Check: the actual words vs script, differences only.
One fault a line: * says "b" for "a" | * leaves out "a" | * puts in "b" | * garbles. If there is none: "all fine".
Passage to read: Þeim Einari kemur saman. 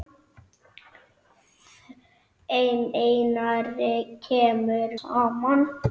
all fine